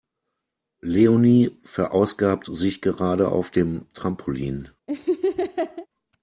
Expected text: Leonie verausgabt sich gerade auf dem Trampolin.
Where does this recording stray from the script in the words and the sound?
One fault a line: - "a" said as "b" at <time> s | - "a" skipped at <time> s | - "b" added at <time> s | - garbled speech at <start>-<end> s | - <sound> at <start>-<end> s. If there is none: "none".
- laugh at 4.9-5.9 s